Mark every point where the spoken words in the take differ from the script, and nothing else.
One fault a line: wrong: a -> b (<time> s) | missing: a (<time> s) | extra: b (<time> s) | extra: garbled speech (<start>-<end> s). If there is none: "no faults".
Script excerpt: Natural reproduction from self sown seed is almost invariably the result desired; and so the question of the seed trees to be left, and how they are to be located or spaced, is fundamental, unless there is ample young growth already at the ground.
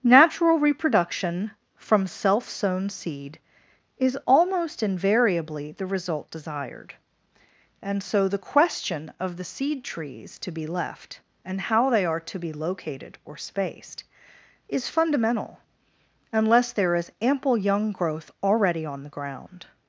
wrong: at -> on (18.9 s)